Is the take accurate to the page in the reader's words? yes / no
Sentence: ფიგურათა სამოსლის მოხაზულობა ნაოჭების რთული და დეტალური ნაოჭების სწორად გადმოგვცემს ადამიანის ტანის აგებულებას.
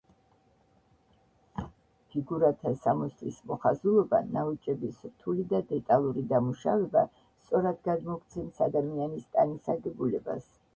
no